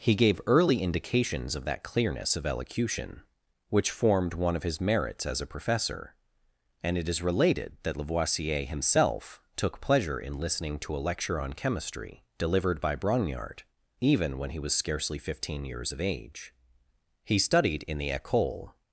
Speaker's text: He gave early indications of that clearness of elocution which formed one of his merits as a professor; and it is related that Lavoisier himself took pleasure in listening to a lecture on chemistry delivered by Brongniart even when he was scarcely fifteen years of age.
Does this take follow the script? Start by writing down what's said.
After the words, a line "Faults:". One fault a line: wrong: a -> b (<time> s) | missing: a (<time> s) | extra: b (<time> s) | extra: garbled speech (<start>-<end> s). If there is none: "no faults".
He gave early indications of that clearness of elocution which formed one of his merits as a professor; and it is related that Lavoisier himself took pleasure in listening to a lecture on chemistry delivered by Brongniart even when he was scarcely fifteen years of age. He studied in the Ecole
Faults:
extra: He studied in the Ecole (17.2 s)